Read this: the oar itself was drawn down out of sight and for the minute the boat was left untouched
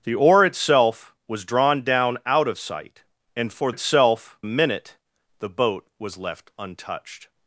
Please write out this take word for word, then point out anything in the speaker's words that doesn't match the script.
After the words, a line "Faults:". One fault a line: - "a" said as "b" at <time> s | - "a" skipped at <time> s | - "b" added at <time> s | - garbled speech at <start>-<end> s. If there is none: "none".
the oar itself was drawn down out of sight and for itself minute the boat was left untouched
Faults:
- "the" said as "itself" at 3.7 s